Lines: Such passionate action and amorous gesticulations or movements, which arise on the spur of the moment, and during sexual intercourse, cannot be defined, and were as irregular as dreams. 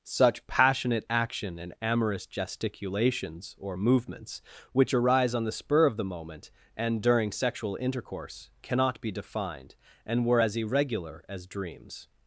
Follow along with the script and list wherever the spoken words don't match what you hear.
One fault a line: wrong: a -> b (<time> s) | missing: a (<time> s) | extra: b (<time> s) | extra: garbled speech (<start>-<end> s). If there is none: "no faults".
no faults